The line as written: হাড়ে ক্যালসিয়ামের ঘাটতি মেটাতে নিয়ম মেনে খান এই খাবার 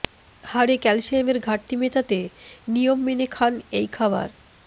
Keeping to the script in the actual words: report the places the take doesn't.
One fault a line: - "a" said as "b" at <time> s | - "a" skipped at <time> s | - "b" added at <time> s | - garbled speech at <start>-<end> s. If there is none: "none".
none